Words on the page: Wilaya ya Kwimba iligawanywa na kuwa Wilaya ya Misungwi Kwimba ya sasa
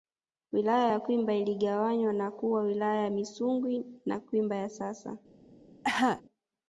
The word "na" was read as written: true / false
true